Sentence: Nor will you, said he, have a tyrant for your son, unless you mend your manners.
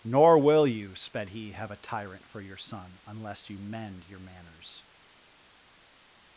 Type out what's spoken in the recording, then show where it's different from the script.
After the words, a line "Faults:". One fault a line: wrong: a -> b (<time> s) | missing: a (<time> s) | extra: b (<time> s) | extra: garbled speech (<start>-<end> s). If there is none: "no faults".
Nor will you, sped he, have a tyrant for your son, unless you mend your manners.
Faults:
wrong: said -> sped (0.9 s)